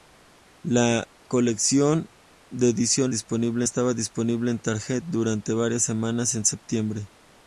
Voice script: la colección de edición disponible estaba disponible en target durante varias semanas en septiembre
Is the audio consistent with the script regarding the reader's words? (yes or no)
yes